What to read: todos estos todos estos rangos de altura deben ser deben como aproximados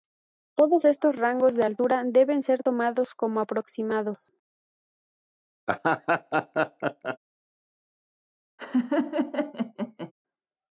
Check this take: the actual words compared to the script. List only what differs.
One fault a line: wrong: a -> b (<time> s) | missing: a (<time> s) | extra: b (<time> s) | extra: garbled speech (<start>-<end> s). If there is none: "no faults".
missing: todos estos (1.2 s)
wrong: deben -> tomados (2.6 s)